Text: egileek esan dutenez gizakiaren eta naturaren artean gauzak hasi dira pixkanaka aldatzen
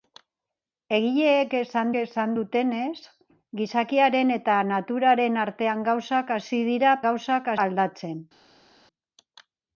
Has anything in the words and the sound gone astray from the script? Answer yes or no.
yes